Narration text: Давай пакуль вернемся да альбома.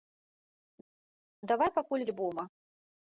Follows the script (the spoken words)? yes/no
no